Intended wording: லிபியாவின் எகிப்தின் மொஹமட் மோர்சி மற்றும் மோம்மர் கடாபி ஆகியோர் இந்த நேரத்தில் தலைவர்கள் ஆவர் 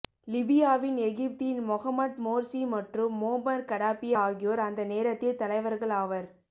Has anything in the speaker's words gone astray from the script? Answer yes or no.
yes